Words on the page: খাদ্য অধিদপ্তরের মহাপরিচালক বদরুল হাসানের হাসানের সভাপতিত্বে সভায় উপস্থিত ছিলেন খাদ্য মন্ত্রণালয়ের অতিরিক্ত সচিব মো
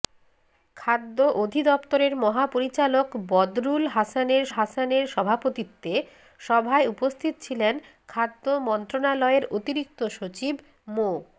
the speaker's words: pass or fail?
pass